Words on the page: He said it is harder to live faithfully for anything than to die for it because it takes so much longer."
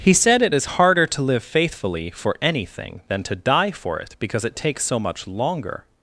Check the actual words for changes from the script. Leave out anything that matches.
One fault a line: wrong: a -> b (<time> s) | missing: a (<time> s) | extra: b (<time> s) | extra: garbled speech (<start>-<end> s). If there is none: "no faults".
no faults